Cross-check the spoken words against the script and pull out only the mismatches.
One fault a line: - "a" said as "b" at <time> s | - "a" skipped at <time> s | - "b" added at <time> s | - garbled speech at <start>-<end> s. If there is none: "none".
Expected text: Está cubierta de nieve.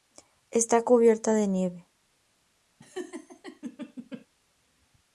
none